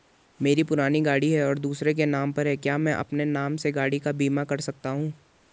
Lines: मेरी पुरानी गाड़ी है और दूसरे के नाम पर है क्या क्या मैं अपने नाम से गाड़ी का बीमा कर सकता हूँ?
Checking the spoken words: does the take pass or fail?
fail